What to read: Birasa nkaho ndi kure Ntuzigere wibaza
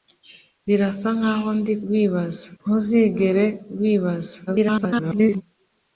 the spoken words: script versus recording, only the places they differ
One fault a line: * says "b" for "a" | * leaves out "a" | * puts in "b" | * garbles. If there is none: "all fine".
* says "wibaza" for "kure"
* garbles